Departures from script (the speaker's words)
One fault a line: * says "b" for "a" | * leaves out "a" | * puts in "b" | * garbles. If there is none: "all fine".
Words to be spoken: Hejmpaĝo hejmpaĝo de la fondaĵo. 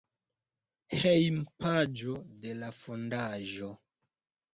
* leaves out "hejmpaĝo"